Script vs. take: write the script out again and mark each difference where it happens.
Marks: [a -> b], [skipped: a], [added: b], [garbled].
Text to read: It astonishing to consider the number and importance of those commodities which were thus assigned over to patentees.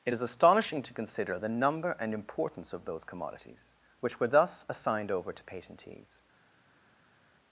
It [added: is] astonishing to consider the number and importance of those commodities which were thus assigned over to patentees.